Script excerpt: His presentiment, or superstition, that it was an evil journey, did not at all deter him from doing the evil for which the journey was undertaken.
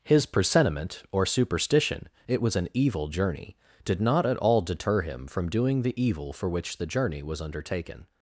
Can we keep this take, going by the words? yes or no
no